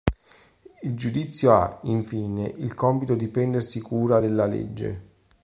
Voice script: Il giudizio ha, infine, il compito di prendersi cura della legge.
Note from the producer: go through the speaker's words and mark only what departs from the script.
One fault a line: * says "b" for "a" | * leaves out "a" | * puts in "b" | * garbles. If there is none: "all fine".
all fine